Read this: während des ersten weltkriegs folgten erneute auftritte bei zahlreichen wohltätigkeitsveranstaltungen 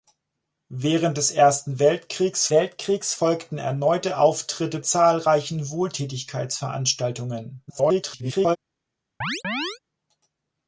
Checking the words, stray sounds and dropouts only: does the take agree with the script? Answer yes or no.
no